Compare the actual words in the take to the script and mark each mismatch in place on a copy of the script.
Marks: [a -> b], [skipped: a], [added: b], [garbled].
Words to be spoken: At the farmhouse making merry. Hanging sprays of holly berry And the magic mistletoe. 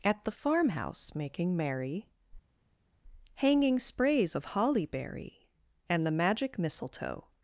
At the farmhouse making merry. Hanging sprays of holly berry And the magic mistletoe.